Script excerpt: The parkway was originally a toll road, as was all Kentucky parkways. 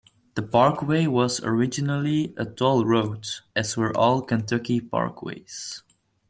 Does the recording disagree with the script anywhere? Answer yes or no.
yes